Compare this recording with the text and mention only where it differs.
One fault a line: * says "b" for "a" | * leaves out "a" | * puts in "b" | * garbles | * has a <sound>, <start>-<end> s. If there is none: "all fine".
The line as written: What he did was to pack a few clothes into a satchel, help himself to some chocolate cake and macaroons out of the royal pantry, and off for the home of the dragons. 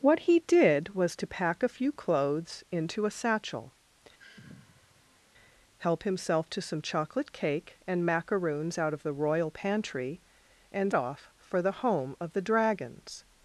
* has a sigh, 4.2-5.2 s